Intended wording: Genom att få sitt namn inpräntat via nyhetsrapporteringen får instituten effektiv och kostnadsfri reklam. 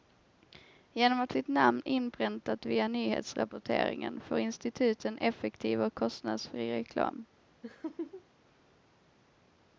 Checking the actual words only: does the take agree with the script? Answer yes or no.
no